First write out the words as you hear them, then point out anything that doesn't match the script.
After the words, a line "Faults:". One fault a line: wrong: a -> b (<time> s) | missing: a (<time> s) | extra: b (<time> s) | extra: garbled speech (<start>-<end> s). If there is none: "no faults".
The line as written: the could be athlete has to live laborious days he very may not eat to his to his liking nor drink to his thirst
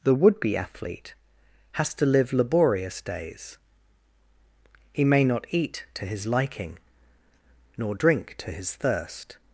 the would be athlete has to live laborious days he may not eat to his liking nor drink to his thirst
Faults:
wrong: could -> would (0.1 s)
missing: very (5.0 s)
missing: to his (6.2 s)